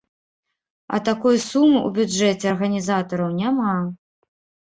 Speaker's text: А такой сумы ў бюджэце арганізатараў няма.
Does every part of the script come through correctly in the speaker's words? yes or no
yes